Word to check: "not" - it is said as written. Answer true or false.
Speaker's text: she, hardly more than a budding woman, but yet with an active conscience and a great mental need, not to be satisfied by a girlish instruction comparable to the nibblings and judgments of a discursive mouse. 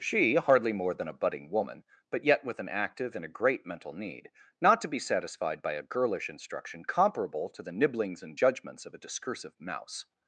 true